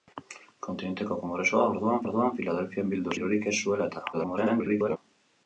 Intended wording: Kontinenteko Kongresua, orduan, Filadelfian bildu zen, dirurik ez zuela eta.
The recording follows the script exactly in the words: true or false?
false